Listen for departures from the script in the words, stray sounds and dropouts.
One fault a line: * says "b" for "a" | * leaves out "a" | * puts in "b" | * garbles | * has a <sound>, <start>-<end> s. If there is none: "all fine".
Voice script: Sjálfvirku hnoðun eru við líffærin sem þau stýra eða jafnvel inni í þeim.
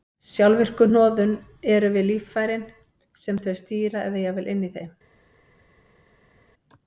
all fine